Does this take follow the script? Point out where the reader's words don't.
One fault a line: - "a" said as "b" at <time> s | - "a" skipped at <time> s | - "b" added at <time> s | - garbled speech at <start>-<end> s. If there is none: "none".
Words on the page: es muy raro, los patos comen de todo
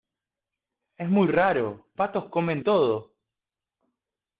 - "los" skipped at 1.9 s
- "de" skipped at 2.6 s